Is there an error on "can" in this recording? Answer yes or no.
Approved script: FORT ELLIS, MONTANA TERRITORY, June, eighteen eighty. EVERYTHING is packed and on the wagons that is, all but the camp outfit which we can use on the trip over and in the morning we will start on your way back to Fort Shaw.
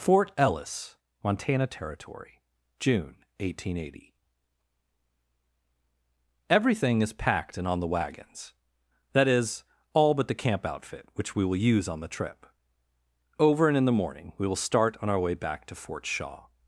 yes